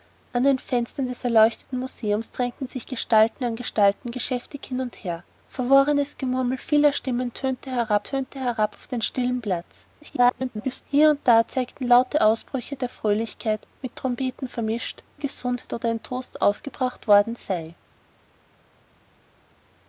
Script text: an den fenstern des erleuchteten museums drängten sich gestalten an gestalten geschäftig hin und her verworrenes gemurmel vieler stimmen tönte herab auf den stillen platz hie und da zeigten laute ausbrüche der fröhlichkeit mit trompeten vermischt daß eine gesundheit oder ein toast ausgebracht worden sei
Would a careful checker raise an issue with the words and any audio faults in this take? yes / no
yes